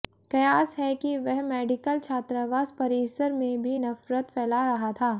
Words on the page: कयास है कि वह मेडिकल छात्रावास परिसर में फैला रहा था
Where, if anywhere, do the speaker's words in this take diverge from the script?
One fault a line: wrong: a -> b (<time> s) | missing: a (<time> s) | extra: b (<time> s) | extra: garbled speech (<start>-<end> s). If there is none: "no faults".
extra: भी नफरत (3.6 s)